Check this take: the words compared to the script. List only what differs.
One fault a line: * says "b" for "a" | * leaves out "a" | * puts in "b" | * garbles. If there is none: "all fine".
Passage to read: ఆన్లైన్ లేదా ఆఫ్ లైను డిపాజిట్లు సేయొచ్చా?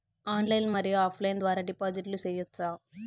* says "మరియు" for "లేదా"
* puts in "ద్వారా"